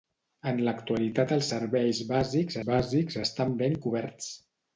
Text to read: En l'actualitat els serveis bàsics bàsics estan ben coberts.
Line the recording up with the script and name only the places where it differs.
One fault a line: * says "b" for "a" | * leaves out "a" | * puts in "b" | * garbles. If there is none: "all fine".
all fine